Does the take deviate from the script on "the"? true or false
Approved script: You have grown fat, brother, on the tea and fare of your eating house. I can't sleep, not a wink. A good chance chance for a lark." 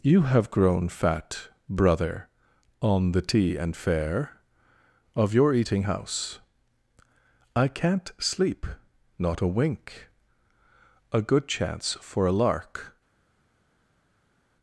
false